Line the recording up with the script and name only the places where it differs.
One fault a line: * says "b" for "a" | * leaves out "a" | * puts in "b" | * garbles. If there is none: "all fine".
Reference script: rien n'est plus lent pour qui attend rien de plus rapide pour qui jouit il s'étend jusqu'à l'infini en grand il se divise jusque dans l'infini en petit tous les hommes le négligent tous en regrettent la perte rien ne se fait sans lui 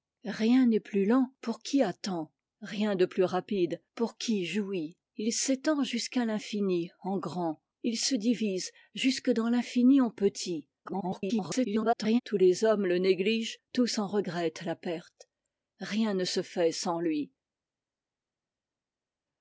* garbles